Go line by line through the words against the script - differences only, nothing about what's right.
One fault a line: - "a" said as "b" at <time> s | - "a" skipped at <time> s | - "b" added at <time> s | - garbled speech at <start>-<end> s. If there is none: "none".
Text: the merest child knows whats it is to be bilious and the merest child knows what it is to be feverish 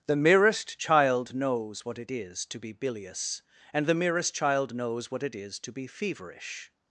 - "whats" said as "what" at 1.9 s